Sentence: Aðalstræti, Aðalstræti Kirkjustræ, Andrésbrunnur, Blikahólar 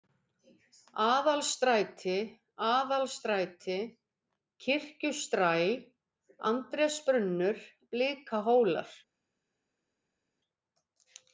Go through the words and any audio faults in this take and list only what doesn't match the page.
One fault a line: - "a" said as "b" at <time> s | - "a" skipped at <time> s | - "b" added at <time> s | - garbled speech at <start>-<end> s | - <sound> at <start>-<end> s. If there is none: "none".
none